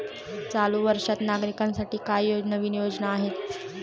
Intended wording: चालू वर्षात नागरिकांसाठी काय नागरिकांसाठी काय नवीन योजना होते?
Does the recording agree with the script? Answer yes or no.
no